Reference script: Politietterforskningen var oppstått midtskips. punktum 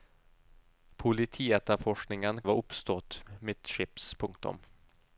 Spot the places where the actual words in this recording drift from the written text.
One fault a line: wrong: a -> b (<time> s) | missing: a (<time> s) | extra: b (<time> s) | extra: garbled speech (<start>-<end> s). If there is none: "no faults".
no faults